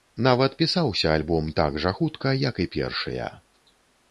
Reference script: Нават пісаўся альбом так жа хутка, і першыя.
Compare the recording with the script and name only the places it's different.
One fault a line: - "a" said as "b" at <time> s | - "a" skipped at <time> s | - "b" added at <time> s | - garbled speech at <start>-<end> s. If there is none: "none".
- "як" added at 2.5 s